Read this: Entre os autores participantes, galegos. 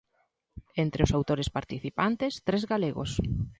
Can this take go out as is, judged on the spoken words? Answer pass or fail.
fail